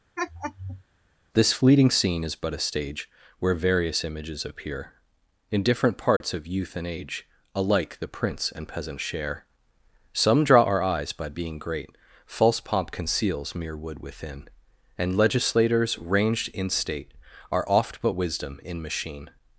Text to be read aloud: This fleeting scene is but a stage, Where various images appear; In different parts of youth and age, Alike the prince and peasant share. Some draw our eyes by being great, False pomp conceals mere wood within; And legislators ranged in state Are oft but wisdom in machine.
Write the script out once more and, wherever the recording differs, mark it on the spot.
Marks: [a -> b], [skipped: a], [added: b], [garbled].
This fleeting scene is but a stage, Where various images appear; In different parts of youth and age, Alike the prince and peasant share. Some draw our eyes by being great, False pomp conceals mere wood within; And legislators ranged in state Are oft but wisdom in machine.